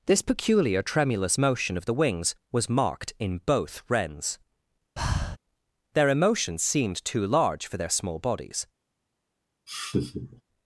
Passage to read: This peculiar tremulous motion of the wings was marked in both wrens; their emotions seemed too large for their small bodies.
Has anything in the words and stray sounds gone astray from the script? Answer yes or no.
yes